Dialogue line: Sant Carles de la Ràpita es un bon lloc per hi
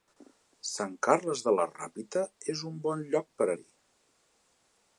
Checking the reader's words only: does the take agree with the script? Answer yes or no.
yes